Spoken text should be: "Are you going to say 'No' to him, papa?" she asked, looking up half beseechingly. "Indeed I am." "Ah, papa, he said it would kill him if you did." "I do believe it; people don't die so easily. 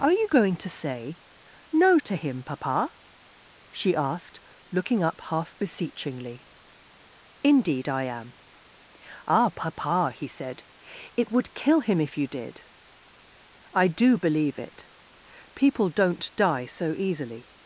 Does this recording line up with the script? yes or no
yes